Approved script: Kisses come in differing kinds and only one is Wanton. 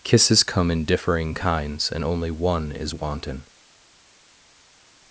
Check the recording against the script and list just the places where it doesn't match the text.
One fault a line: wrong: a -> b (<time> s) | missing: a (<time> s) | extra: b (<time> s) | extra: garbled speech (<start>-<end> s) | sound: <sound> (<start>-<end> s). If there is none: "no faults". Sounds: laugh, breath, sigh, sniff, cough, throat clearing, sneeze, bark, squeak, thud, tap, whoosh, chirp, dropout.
no faults